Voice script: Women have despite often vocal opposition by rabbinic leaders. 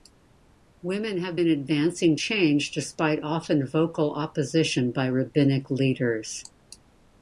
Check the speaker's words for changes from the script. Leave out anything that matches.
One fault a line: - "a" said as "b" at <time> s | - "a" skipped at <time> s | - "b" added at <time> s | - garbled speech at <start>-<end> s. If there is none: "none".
- "been advancing change" added at 1.3 s